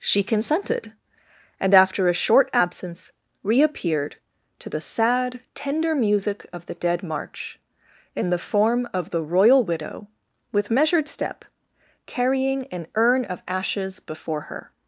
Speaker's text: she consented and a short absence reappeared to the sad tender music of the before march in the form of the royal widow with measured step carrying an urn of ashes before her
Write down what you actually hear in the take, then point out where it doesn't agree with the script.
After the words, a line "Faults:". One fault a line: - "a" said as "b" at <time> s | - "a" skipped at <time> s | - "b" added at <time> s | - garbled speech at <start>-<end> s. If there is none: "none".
she consented and after a short absence reappeared to the sad tender music of the dead march in the form of the royal widow with measured step carrying an urn of ashes before her
Faults:
- "after" added at 1.8 s
- "before" said as "dead" at 6.7 s